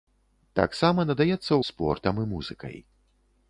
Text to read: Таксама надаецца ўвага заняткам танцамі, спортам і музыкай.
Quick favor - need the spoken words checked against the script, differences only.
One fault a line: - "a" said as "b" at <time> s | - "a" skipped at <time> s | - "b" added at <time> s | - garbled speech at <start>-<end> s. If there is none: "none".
- "ўвага заняткам танцамі" skipped at 1.5 s